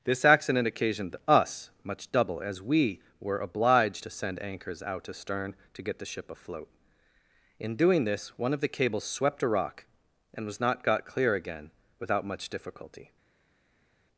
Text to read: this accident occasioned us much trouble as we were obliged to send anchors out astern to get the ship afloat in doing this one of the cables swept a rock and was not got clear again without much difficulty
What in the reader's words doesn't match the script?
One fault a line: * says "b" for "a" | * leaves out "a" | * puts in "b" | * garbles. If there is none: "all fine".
* says "double" for "trouble"